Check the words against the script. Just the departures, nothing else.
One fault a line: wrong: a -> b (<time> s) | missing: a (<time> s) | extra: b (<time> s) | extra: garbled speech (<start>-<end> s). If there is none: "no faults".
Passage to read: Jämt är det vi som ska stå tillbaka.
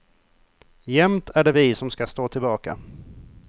no faults